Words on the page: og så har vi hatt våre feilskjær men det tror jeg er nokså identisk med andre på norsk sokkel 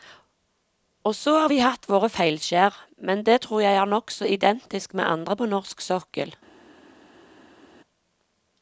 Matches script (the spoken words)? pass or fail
pass